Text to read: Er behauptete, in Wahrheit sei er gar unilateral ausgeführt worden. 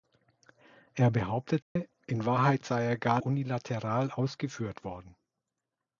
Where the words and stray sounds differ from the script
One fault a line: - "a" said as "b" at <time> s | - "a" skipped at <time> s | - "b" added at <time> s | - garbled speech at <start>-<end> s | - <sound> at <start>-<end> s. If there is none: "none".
- dropout at 1.6-1.8 s